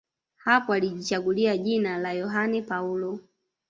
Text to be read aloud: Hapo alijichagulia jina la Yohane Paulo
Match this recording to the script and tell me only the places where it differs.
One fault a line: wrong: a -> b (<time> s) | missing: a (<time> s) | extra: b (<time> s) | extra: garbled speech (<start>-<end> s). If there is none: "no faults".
no faults